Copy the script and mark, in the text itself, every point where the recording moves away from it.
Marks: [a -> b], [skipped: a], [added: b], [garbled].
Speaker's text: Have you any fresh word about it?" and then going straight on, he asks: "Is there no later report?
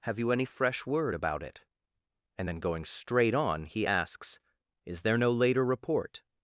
Have you any fresh word about it?" and then going straight on, he asks: "Is there no later report?